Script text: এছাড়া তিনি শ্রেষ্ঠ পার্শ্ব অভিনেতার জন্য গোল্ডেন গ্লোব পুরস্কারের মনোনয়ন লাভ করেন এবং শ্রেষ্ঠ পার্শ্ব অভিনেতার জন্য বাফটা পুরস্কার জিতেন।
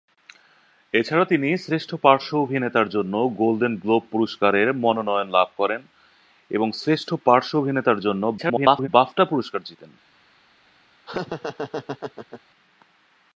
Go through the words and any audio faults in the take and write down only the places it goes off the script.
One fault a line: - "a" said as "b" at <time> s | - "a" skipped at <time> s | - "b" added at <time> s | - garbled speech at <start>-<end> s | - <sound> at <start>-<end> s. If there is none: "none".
- garbled speech at 8.4-8.9 s
- laugh at 11.1-12.4 s